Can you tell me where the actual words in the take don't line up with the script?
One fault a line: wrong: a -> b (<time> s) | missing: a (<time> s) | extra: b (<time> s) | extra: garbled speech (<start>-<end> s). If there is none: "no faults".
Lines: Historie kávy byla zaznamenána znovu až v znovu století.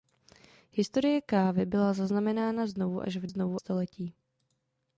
no faults